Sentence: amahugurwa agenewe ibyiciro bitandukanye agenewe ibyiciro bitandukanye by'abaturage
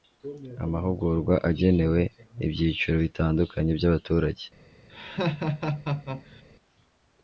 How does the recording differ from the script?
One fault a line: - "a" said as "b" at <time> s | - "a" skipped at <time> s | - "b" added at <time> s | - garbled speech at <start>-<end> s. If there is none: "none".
- "agenewe ibyiciro bitandukanye" skipped at 3.7 s